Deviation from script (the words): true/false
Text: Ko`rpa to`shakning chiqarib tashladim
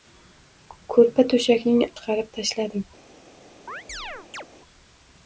false